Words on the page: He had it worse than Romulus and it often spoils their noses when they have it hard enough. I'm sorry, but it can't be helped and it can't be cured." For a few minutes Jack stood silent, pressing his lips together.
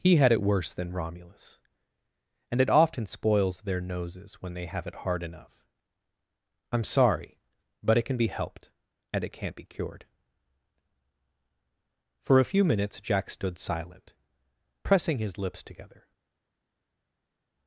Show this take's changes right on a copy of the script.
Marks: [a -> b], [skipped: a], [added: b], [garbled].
He had it worse than Romulus and it often spoils their noses when they have it hard enough. I'm sorry, but it [can't -> can] be helped and it can't be cured." For a few minutes Jack stood silent, pressing his lips together.